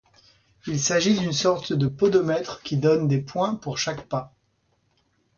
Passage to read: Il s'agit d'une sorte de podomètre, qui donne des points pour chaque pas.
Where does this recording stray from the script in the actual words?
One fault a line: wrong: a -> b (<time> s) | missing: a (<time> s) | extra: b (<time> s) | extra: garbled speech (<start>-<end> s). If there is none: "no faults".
no faults